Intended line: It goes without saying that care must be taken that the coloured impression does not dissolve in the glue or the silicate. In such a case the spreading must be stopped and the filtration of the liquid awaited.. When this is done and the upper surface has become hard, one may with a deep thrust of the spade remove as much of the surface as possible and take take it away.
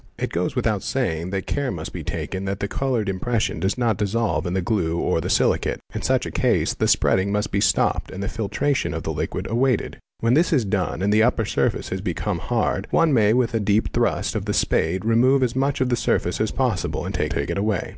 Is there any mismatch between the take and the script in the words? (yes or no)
no